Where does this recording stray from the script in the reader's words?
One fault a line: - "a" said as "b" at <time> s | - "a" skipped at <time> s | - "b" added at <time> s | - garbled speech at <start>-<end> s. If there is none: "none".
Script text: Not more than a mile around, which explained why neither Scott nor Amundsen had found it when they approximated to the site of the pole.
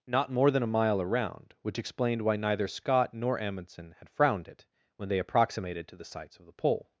- "found" said as "frowned" at 4.1 s
- "site" said as "sites" at 6.0 s